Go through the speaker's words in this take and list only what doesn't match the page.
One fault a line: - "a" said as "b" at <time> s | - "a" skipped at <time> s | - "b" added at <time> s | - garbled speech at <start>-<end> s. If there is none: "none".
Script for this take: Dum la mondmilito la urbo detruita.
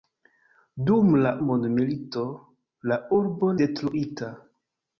none